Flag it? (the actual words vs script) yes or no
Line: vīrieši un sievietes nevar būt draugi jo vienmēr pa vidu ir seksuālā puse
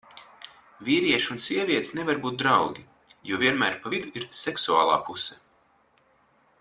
no